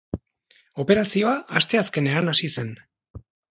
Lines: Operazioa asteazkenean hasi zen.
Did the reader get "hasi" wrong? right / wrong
right